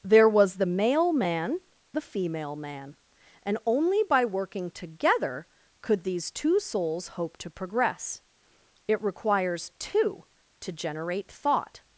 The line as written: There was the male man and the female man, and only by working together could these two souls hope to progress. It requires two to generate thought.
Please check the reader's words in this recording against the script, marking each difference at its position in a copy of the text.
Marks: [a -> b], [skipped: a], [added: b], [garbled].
There was the male man [skipped: and] the female man, and only by working together could these two souls hope to progress. It requires two to generate thought.